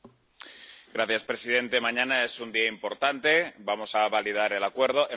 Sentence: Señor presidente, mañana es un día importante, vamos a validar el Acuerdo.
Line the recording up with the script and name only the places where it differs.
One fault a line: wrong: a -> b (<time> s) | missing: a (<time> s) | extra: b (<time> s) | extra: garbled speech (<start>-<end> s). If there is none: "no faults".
no faults